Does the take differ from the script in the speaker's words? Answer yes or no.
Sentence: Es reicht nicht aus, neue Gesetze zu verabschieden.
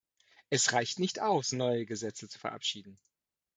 no